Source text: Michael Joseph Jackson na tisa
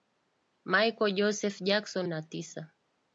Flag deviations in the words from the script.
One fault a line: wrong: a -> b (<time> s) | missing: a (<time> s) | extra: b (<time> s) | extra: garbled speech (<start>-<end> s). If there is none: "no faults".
no faults